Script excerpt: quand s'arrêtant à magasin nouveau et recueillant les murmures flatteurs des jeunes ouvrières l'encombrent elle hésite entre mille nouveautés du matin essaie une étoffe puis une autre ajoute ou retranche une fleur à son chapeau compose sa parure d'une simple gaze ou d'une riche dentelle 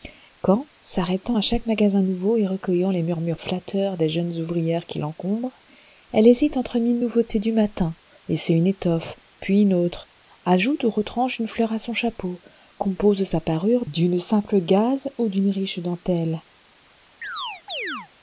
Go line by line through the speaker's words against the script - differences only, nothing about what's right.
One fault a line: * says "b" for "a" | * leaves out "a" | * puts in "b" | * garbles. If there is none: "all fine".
* puts in "chaque"
* puts in "qui"